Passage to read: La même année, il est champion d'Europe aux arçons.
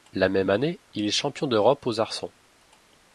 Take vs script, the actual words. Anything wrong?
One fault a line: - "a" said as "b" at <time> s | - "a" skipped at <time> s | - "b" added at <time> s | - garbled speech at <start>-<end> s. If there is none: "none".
none